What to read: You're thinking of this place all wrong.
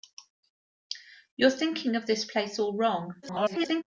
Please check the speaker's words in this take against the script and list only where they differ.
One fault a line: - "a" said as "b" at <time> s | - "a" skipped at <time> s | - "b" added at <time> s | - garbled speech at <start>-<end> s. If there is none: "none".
- garbled speech at 3.2-3.8 s